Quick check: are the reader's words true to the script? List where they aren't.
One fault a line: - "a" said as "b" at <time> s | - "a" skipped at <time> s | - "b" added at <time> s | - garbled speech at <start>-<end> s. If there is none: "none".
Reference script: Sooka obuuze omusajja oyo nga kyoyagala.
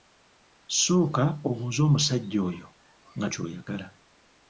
none